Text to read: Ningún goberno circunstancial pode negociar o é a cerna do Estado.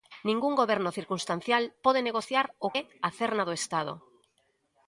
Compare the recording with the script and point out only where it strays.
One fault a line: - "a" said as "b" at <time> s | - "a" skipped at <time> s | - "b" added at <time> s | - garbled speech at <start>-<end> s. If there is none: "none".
none